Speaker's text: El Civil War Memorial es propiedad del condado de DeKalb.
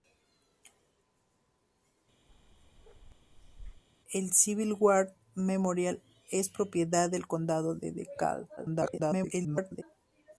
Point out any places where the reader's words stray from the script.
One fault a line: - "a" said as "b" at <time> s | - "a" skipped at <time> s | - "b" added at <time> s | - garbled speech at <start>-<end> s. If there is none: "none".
- garbled speech at 8.6-9.8 s